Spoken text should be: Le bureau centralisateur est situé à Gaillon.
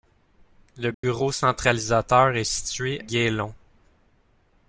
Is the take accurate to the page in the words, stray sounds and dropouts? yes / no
no